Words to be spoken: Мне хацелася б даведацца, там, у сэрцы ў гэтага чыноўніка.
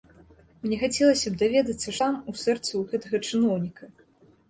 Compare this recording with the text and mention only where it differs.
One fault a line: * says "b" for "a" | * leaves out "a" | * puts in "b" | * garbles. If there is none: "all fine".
all fine